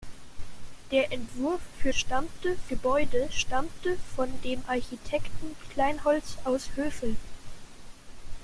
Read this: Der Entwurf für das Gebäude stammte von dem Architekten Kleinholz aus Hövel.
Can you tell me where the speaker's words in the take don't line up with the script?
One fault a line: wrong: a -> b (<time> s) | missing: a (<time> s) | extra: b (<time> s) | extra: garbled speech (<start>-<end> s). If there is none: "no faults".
wrong: das -> stammte (1.9 s)